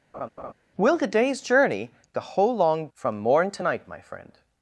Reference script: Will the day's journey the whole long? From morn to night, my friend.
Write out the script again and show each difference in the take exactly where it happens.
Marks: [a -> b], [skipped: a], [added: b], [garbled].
Will the day's journey the whole long? From morn to night, my friend.